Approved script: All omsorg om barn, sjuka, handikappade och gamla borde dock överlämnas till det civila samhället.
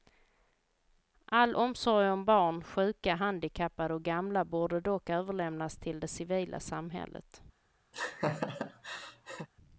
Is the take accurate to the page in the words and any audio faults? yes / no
no